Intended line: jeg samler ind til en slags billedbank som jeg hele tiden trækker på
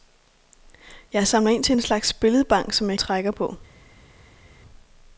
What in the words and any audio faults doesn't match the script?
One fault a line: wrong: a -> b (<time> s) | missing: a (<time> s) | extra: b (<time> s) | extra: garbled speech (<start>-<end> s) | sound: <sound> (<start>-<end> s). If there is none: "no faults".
missing: hele tiden (3.0 s)